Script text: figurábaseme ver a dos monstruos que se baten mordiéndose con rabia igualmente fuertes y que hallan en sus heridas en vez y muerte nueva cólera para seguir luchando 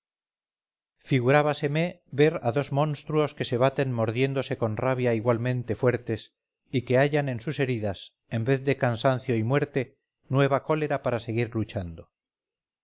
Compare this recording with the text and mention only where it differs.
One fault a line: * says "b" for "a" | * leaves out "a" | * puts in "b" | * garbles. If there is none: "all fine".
* puts in "de cansancio"